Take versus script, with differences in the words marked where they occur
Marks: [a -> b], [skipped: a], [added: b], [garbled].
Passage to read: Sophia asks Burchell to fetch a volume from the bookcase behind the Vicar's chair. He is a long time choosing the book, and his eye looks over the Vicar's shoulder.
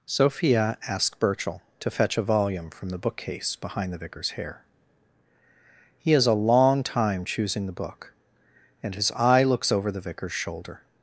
Sophia asks Burchell to fetch a volume from the bookcase behind the Vicar's [chair. -> hair] He is a long time choosing the book, and his eye looks over the Vicar's shoulder.